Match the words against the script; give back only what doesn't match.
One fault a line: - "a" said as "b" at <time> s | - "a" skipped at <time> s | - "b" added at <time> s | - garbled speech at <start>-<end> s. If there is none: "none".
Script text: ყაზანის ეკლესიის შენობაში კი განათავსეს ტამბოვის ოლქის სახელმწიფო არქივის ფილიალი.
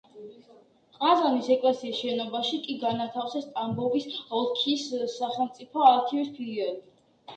none